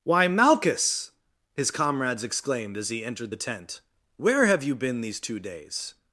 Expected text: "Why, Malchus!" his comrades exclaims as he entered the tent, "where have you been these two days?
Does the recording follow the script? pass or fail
fail